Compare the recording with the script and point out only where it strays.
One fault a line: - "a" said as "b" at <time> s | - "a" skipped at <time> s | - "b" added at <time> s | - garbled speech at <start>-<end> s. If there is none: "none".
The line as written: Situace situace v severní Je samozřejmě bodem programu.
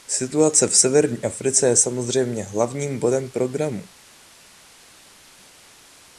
- "situace" skipped at 0.7 s
- "Africe" added at 1.2 s
- "hlavním" added at 2.4 s